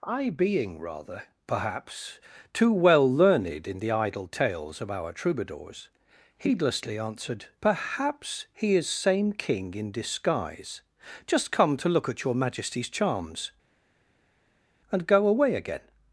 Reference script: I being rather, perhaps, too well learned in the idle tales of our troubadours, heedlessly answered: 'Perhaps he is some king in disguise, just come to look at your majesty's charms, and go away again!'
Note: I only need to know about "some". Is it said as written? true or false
false